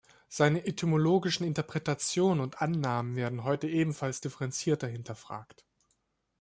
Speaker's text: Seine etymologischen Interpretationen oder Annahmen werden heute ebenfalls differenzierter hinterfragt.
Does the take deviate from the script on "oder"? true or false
true